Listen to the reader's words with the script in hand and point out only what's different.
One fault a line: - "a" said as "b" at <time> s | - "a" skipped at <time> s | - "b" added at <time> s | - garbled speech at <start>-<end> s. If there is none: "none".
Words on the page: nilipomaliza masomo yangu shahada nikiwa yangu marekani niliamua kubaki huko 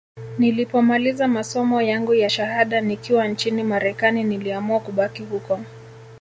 - "ya" added at 2.1 s
- "yangu" said as "nchini" at 3.3 s